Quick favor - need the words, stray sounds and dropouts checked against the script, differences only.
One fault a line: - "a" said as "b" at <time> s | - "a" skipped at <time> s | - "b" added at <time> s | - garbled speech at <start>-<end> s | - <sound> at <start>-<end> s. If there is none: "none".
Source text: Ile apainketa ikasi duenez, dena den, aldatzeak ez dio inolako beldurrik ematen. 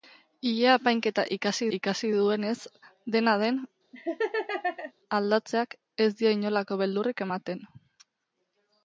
- "ikasi" added at 1.8 s
- laugh at 3.9-4.9 s